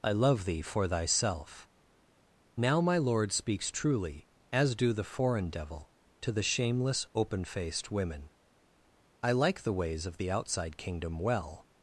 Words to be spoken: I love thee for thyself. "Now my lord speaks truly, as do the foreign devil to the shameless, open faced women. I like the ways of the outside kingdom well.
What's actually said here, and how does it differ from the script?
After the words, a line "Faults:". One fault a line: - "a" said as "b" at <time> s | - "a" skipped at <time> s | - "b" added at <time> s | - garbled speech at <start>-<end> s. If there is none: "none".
I love thee for thyself. "Now my lord speaks truly, as do the foreign devil to the shameless, open faced women. I like the ways of the outside kingdom well.
Faults:
none